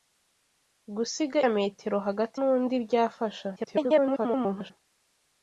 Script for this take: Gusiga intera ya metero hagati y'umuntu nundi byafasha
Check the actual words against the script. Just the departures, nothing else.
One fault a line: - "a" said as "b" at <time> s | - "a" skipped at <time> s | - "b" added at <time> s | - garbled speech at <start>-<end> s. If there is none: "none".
- "intera" skipped at 1.4 s
- "y'umuntu" skipped at 2.4 s
- garbled speech at 3.6-4.7 s